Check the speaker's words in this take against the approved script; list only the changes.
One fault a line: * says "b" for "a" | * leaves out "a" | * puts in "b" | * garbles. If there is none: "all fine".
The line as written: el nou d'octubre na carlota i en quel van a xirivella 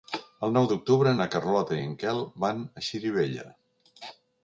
all fine